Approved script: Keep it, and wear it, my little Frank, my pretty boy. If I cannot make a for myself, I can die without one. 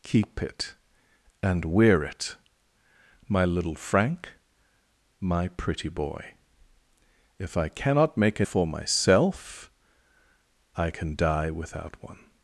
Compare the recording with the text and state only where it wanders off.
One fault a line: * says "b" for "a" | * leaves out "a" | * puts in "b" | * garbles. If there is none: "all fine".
all fine